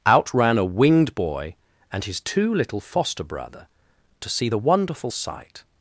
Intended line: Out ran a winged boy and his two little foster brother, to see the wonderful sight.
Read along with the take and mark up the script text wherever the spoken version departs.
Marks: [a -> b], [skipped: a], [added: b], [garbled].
Out ran a winged boy and his two little foster brother, to see the wonderful sight.